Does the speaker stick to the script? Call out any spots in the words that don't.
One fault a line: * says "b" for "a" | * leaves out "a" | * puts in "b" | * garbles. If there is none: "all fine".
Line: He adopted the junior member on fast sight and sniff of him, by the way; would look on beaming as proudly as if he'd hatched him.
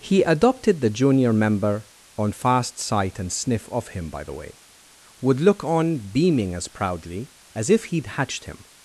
all fine